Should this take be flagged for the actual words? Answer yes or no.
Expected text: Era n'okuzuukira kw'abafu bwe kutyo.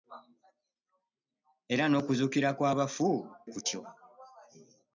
yes